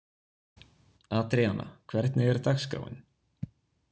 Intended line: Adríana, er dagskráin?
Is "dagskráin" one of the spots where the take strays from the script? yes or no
no